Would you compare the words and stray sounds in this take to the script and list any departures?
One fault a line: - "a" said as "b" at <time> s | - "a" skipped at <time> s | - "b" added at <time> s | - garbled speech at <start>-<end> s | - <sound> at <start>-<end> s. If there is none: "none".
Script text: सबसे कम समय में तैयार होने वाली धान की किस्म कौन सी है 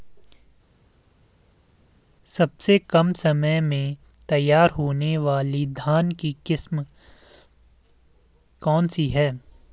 none